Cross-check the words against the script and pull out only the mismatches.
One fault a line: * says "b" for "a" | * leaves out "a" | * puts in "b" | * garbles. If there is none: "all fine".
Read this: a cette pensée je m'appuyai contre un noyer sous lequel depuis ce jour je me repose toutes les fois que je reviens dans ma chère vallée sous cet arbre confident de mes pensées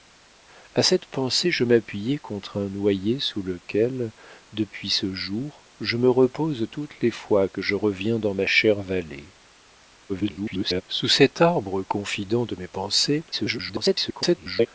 * garbles
* garbles